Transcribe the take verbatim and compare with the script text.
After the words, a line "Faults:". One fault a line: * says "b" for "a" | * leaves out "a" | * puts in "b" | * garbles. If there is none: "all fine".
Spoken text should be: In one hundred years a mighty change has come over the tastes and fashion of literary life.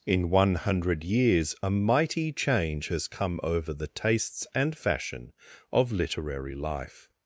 In one hundred years a mighty change has come over the tastes and fashion of literary life.
Faults:
all fine